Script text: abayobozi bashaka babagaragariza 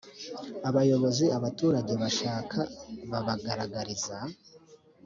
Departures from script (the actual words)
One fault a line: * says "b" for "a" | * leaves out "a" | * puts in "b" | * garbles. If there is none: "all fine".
* puts in "abaturage"